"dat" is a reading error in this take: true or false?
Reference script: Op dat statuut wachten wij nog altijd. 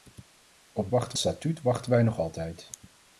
true